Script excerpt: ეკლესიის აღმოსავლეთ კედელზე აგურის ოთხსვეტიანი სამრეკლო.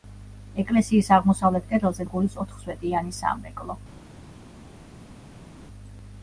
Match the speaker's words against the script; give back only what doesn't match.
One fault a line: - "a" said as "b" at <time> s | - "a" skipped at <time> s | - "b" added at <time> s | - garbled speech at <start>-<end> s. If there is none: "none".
none